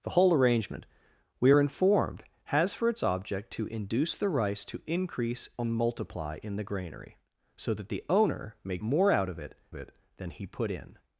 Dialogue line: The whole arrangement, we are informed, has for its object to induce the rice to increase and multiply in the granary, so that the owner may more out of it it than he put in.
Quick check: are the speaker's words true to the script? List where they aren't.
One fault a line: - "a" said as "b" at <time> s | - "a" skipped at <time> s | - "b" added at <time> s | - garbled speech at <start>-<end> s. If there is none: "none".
none